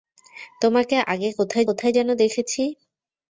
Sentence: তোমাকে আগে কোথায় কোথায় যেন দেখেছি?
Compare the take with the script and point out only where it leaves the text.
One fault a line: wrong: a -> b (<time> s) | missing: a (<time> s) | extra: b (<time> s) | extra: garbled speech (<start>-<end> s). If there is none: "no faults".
no faults